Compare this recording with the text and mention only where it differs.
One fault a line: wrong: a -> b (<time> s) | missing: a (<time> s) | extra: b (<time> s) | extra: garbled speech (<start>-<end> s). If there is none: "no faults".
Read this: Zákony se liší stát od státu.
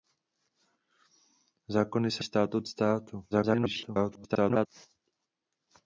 missing: liší (2.2 s)
extra: garbled speech (3.3-4.7 s)